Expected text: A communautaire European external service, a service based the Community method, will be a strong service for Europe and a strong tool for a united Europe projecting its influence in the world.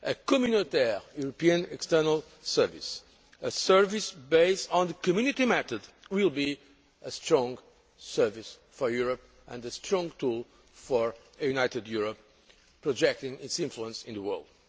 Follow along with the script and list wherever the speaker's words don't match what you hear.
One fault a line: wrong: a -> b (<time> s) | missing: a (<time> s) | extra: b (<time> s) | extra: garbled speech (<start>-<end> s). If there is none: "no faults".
extra: on (4.7 s)